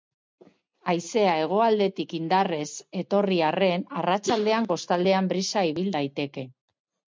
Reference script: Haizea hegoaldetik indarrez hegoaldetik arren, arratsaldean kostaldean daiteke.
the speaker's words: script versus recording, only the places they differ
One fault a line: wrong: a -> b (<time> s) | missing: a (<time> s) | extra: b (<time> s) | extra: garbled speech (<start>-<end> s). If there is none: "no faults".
wrong: hegoaldetik -> etorri (3.0 s)
extra: brisa ibil (5.3 s)